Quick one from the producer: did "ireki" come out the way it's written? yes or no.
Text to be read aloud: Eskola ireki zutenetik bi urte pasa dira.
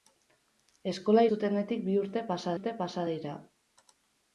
no